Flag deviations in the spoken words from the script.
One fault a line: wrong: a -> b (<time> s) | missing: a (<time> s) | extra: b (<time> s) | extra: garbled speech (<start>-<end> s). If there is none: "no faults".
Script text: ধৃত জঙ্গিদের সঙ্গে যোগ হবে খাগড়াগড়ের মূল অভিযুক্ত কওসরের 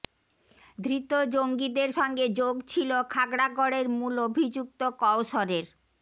wrong: হবে -> ছিল (2.7 s)